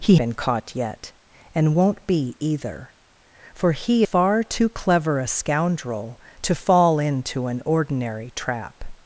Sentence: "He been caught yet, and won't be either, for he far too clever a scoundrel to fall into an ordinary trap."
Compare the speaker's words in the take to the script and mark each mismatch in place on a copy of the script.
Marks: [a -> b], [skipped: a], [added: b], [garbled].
"He been caught yet, and won't be either, for he far too clever a scoundrel to fall into an ordinary trap."